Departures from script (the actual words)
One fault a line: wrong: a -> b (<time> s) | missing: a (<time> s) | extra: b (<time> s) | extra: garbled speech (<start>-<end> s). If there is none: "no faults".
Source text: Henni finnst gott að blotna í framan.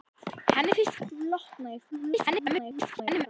missing: gott (1.0 s)
extra: garbled speech (1.9-3.3 s)